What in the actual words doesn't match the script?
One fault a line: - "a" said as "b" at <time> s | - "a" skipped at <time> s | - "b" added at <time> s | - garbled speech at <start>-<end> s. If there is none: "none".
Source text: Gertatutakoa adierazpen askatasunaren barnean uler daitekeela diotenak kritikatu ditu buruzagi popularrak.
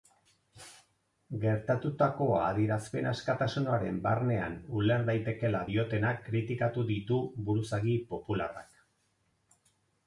none